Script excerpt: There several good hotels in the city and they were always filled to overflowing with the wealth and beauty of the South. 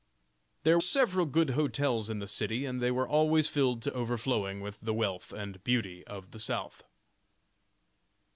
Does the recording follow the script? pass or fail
pass